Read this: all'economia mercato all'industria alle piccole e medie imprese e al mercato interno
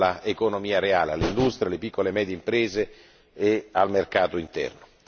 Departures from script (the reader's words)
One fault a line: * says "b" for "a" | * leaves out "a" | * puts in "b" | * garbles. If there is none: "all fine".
* says "reale" for "mercato"